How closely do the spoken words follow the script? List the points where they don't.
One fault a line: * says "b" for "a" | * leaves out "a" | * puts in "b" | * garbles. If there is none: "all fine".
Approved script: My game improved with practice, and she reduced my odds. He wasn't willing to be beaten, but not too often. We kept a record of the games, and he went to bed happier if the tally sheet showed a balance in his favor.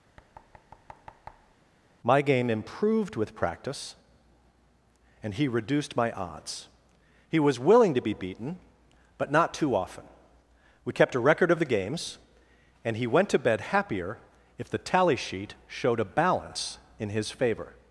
* says "he" for "she"
* says "was" for "wasn't"